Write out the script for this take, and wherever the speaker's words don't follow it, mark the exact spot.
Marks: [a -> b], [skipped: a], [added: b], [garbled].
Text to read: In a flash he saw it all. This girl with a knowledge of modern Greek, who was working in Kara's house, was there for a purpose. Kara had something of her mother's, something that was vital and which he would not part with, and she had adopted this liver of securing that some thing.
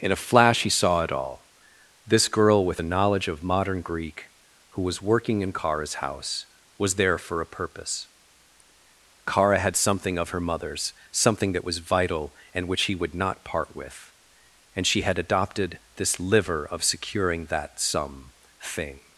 In a flash he saw it all. This girl with a knowledge of modern Greek, who was working in Kara's house, was there for a purpose. Kara had something of her mother's, something that was vital and which he would not part with, and she had adopted this liver of securing that some thing.